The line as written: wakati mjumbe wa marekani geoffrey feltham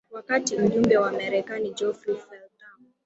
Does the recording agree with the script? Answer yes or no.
yes